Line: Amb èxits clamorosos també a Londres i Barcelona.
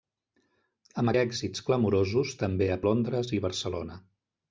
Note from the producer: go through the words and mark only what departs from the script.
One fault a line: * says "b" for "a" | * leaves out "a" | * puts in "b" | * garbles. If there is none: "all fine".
all fine